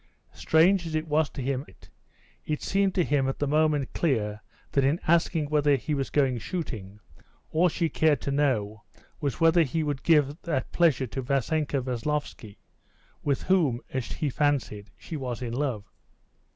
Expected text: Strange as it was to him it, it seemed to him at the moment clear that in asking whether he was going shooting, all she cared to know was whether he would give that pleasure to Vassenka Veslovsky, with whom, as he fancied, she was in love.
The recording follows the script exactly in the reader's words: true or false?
true